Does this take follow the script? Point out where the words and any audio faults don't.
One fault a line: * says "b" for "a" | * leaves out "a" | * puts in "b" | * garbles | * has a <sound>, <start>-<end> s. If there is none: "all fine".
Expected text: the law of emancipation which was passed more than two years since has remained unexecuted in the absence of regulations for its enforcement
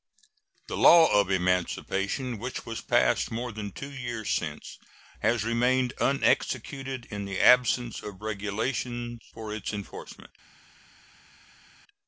all fine